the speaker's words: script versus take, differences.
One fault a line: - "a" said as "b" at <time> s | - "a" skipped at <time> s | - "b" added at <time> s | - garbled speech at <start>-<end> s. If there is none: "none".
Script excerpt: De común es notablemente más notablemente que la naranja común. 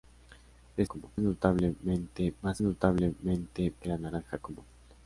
none